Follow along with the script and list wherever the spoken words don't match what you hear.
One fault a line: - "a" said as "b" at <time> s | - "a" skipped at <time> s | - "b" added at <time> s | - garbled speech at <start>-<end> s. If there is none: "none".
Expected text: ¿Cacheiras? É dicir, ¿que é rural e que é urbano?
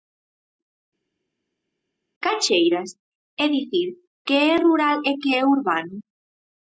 none